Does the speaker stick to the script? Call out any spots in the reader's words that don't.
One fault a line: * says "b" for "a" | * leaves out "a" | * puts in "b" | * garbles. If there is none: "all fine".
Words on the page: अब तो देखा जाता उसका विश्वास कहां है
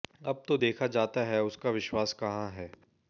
* puts in "है"